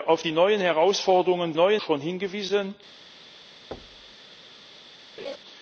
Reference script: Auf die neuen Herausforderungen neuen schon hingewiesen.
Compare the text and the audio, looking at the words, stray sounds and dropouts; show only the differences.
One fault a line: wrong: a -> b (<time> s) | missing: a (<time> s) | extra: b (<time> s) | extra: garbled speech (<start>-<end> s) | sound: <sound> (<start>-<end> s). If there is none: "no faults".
sound: thud (3.7-4.1 s)
sound: laugh (5.2-5.4 s)